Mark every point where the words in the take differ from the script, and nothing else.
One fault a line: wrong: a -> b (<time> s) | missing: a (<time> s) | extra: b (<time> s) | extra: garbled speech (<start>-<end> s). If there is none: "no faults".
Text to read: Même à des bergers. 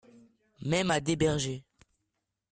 no faults